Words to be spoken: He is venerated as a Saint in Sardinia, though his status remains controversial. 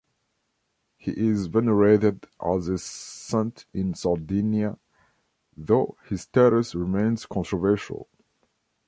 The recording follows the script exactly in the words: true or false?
true